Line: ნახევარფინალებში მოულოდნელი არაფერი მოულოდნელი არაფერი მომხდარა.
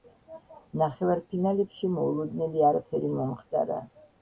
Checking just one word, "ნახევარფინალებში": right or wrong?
right